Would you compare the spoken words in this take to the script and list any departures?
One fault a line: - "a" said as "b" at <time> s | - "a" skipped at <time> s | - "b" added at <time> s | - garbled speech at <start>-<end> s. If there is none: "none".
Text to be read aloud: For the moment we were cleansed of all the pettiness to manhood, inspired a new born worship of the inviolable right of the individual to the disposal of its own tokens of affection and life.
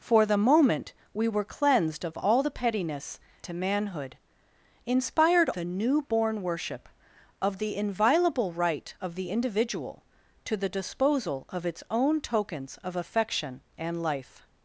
none